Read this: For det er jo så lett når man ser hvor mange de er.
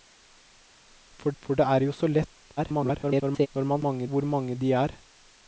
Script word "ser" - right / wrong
wrong